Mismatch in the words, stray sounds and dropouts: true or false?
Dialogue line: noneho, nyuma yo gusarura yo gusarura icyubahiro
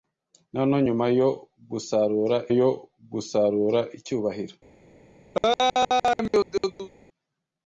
true